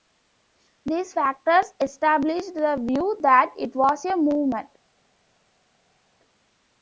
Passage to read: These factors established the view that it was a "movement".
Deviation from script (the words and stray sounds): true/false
false